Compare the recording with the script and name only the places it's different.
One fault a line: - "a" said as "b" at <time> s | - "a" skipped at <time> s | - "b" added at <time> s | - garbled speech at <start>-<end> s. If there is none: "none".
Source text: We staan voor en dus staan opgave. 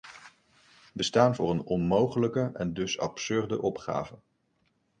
- "een onmogelijke" added at 1.5 s
- "staan" said as "absurde" at 3.0 s